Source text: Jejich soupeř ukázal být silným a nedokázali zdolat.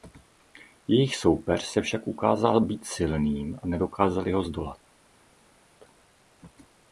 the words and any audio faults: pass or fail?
fail